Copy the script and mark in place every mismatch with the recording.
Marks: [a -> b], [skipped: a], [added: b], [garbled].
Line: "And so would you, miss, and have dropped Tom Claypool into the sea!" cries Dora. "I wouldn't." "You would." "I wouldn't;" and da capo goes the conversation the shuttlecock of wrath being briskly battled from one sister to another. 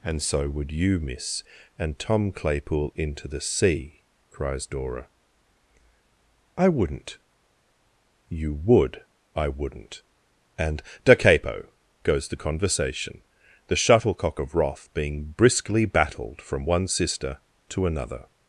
"And so would you, miss, and [skipped: have dropped] Tom Claypool into the sea!" cries Dora. "I wouldn't." "You would." "I wouldn't;" and da capo goes the conversation the shuttlecock of wrath being briskly battled from one sister to another.